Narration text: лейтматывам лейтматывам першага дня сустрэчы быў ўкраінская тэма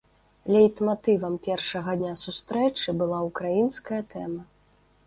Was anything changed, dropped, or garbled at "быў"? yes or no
yes